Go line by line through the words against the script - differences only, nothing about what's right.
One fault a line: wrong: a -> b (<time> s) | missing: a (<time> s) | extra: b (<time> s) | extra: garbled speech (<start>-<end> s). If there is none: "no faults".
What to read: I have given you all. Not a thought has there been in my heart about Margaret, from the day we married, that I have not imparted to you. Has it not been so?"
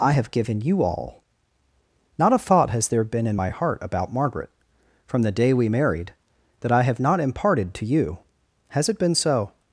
missing: not (9.0 s)